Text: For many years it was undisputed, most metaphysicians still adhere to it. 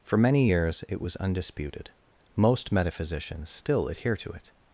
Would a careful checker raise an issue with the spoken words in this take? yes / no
no